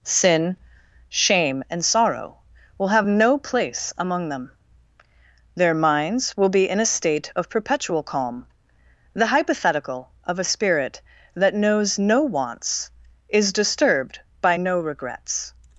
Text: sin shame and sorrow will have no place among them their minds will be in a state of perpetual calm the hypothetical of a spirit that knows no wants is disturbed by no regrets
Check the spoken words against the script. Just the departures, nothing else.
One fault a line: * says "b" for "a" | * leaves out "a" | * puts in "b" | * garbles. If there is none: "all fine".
all fine